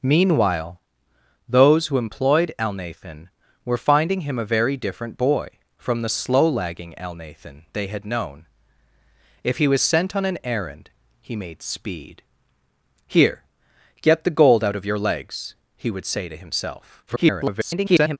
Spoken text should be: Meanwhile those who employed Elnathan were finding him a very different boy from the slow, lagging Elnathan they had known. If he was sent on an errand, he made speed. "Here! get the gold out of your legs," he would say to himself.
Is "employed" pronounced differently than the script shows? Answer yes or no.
no